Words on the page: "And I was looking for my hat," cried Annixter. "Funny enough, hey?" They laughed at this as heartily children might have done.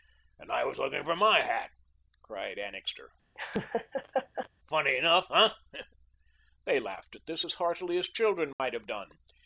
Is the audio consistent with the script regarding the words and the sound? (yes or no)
no